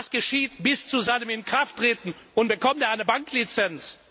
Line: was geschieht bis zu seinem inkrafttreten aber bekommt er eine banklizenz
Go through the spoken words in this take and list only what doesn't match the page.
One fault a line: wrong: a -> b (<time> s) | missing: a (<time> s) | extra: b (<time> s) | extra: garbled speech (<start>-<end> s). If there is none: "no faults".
wrong: aber -> und (2.3 s)